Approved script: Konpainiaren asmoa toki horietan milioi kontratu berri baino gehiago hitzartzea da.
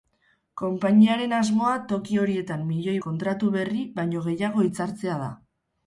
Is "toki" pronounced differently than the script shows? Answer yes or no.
no